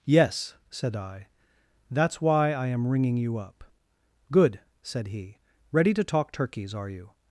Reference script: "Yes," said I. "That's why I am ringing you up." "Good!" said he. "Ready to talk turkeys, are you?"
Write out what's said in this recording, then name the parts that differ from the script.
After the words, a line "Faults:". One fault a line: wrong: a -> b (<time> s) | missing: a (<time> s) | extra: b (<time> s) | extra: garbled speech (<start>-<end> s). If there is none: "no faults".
"Yes," said I. "That's why I am ringing you up." "Good!" said he. "Ready to talk turkeys, are you?"
Faults:
no faults